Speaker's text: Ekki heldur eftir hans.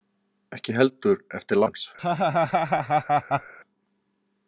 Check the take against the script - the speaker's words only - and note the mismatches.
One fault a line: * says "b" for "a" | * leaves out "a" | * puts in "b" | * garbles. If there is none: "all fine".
all fine